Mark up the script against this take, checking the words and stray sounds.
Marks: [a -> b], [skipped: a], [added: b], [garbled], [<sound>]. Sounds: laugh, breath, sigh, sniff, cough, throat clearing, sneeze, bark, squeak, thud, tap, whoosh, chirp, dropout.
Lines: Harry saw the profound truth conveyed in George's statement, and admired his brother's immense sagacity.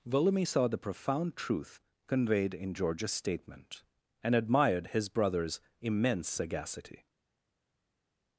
[Harry -> Volumi] saw the profound truth conveyed in George's statement, and admired his brother's immense sagacity.